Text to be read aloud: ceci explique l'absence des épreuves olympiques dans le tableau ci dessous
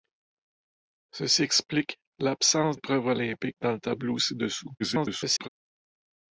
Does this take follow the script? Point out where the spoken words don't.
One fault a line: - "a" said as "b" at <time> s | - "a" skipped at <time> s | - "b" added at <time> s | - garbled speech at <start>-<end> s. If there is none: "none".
- "des" skipped at 2.8 s
- garbled speech at 4.8-5.5 s